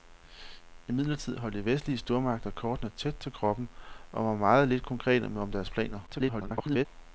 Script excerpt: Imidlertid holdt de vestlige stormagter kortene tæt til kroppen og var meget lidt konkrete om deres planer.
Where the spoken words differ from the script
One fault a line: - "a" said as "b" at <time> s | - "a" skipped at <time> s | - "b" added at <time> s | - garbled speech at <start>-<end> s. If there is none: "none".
- garbled speech at 6.1-6.9 s